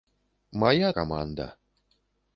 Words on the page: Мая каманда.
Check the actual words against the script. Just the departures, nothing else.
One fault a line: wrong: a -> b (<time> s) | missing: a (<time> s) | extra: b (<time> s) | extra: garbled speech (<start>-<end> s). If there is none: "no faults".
no faults